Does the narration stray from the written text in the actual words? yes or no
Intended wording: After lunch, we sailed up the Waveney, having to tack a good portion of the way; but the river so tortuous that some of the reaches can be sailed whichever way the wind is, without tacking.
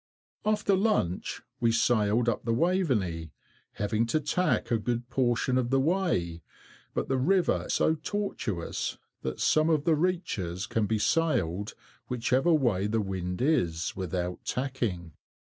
no